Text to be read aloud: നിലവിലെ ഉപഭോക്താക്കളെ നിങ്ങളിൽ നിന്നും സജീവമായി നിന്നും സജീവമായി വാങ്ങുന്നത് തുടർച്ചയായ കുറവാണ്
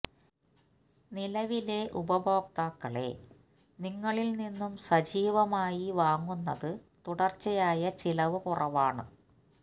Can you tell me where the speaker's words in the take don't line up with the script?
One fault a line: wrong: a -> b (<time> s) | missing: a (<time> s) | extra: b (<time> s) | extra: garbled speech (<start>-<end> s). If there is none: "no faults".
missing: നിന്നും സജീവമായി (5.8 s)
extra: ചിലവ് (8.0 s)